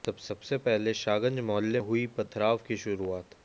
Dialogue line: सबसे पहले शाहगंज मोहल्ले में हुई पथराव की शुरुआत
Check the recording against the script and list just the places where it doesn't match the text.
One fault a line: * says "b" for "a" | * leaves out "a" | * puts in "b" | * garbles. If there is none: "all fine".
* leaves out "में"